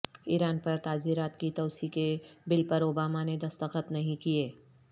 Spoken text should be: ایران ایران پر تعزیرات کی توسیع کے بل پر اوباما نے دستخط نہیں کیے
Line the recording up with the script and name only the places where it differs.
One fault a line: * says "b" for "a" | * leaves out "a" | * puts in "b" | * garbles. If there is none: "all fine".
* leaves out "ایران"